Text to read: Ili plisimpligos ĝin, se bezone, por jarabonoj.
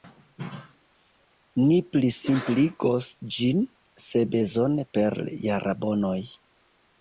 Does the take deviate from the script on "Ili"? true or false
true